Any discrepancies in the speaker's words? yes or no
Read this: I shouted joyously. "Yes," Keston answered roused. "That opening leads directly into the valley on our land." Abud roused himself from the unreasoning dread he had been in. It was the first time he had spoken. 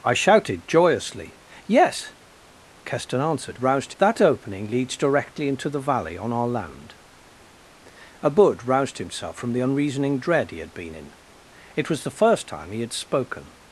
no